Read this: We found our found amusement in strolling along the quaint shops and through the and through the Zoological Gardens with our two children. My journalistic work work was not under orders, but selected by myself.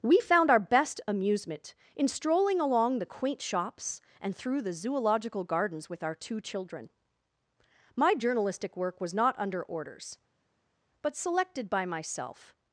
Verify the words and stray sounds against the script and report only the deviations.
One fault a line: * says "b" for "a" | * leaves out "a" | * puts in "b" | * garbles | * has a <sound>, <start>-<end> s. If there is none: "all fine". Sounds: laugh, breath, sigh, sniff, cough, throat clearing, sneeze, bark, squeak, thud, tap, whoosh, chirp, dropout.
* says "best" for "found"
* leaves out "and through the"
* leaves out "work"